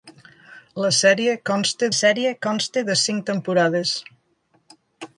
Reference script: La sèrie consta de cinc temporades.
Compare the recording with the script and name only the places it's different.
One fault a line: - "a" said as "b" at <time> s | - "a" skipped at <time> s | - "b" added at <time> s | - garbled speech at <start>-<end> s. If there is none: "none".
- "sèrie consta" added at 2.0 s